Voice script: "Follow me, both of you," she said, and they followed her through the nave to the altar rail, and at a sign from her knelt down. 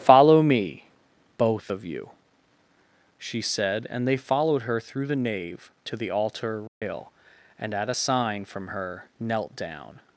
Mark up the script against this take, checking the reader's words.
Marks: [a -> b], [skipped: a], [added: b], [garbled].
"Follow me, both of you," she said, and they followed her through the nave to the altar rail, and at a sign from her knelt down.